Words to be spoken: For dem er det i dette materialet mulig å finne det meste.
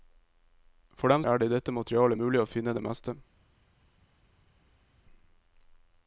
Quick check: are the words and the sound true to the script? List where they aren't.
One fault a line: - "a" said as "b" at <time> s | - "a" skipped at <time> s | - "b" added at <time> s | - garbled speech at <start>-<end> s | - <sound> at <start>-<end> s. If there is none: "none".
none